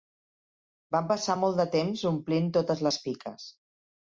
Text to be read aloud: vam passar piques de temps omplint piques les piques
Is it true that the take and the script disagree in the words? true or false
true